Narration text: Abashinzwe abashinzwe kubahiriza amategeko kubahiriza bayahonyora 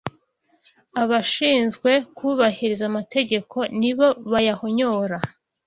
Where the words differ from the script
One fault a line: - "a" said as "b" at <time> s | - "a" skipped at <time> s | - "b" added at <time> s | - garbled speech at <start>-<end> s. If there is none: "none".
- "abashinzwe" skipped at 1.9 s
- "kubahiriza" said as "nibo" at 3.8 s